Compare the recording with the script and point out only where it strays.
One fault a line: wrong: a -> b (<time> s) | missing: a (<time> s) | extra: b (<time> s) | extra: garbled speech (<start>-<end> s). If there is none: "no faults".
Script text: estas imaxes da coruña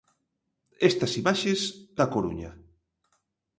no faults